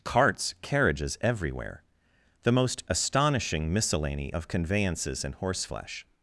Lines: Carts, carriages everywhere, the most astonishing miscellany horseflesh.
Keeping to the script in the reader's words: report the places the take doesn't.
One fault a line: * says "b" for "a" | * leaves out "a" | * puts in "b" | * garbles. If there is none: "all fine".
* puts in "of conveyances and"